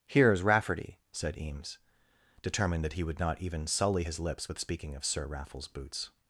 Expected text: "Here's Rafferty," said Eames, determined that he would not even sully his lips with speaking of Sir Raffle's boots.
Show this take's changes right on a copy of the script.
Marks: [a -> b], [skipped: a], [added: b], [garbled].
"Here's Rafferty," said Eames, determined that he would not even sully his lips with speaking of Sir Raffle's boots.